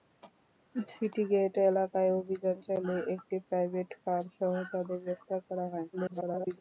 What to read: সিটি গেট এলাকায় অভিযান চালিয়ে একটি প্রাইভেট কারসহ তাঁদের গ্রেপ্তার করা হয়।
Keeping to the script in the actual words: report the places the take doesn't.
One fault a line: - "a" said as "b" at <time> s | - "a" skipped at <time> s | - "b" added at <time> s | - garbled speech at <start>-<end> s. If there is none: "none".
- garbled speech at 5.9-6.6 s